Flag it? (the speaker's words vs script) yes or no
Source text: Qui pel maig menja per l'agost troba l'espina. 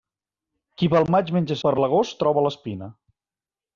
no